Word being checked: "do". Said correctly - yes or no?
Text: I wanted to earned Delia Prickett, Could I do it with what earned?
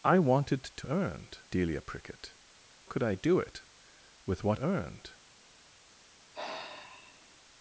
yes